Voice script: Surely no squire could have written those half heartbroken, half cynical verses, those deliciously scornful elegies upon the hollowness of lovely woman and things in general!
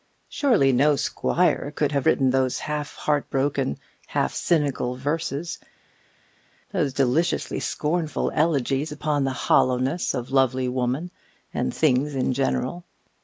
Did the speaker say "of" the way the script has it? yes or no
yes